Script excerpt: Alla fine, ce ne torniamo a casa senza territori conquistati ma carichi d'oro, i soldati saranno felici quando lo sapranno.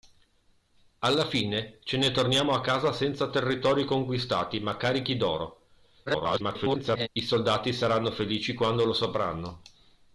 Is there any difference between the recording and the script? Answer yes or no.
yes